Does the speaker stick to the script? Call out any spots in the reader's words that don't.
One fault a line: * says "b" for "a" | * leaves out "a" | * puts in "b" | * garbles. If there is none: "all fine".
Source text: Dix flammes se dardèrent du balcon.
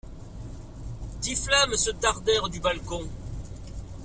all fine